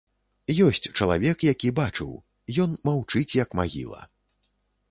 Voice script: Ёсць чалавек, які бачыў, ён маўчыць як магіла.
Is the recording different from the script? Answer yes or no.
no